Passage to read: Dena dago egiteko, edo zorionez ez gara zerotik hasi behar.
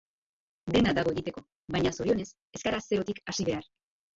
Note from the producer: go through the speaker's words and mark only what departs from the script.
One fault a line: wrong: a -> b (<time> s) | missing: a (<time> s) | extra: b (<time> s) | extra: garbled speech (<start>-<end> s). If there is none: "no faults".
wrong: edo -> baina (1.8 s)